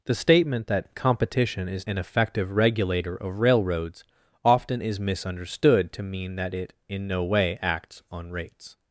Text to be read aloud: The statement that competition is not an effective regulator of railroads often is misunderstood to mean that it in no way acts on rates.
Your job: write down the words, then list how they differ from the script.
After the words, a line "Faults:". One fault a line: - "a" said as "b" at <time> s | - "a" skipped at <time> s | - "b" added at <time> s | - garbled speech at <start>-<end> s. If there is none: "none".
The statement that competition is an effective regulator of railroads often is misunderstood to mean that it in no way acts on rates.
Faults:
- "not" skipped at 1.9 s